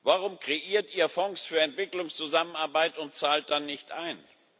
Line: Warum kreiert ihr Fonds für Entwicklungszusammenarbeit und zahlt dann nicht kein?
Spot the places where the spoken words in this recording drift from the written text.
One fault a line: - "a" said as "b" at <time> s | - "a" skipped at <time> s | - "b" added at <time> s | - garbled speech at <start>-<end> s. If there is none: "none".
- "kein" said as "ein" at 3.9 s